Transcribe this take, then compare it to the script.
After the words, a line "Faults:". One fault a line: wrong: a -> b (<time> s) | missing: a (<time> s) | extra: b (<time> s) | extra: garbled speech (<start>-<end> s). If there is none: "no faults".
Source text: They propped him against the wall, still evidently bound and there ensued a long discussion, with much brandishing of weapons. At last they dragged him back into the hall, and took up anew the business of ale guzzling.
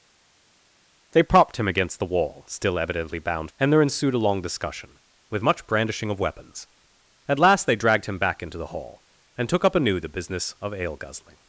They propped him against the wall, still evidently bound and there ensued a long discussion, with much brandishing of weapons. At last they dragged him back into the hall, and took up anew the business of ale guzzling.
Faults:
no faults